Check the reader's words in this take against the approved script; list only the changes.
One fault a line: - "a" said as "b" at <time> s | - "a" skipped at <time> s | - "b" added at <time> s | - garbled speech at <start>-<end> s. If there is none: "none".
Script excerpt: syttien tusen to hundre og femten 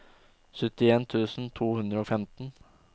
none